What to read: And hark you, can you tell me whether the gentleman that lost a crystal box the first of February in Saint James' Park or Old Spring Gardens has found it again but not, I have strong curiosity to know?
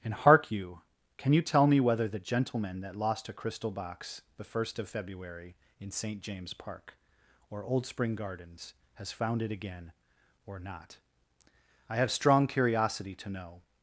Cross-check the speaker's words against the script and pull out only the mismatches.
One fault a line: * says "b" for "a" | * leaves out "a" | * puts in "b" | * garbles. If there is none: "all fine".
* says "or" for "but"